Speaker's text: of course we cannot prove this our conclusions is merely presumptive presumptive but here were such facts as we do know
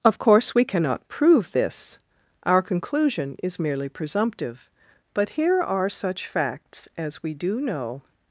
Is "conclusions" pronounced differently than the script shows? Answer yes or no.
yes